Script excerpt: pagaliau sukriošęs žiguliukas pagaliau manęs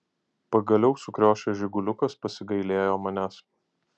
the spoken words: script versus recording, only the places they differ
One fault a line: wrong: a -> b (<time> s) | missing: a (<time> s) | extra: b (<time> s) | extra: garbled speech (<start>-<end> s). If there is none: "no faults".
wrong: pagaliau -> pasigailėjo (2.2 s)